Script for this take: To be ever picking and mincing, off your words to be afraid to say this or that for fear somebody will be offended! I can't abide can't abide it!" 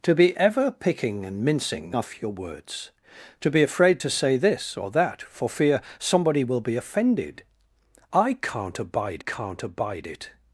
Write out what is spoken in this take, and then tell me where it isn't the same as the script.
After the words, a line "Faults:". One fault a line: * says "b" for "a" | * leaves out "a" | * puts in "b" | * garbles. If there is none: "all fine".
To be ever picking and mincing, off your words to be afraid to say this or that for fear somebody will be offended! I can't abide can't abide it!"
Faults:
all fine